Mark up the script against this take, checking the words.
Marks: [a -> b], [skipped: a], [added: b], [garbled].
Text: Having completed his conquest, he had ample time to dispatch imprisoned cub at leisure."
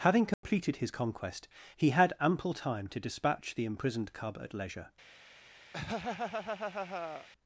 Having completed his conquest, he had ample time to dispatch [added: the] imprisoned cub at leisure."